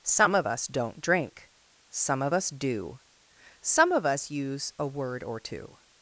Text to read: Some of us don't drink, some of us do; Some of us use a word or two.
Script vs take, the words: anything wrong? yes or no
no